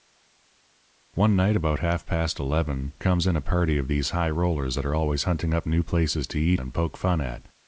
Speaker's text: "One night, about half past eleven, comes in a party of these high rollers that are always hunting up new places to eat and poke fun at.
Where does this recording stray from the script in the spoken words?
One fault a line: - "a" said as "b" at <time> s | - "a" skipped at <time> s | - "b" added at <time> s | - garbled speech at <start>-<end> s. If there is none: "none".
none